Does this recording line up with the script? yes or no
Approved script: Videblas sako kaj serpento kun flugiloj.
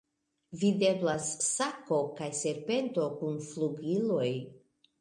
yes